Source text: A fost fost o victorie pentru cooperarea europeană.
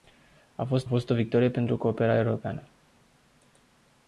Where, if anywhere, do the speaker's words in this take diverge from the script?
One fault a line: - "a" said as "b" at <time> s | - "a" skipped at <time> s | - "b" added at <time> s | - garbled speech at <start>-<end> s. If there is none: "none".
none